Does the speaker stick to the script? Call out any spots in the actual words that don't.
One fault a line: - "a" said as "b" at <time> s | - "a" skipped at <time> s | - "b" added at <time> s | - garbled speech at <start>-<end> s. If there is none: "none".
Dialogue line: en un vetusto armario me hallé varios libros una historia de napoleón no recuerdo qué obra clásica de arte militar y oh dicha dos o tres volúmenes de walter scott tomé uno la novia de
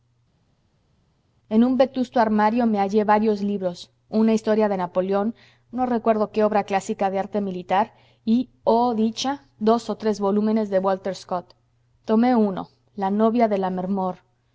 none